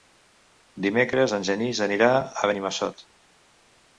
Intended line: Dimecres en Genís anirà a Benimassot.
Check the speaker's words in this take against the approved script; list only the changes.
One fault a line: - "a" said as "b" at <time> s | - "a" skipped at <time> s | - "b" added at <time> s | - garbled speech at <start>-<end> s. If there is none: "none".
none